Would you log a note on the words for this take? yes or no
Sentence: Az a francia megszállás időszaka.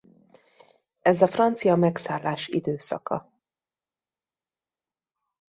yes